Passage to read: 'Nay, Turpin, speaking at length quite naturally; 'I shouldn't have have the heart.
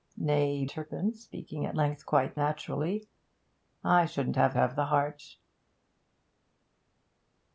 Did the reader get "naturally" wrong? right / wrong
right